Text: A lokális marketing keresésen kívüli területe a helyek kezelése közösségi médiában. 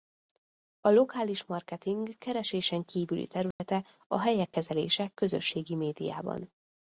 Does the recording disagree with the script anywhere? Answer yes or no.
no